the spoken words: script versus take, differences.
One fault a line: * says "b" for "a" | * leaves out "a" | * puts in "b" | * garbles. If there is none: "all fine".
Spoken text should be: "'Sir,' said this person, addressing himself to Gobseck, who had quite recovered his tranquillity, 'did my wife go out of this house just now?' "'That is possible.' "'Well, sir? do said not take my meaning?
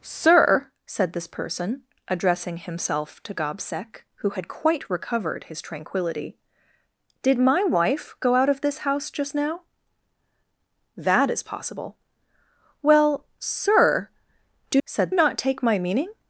all fine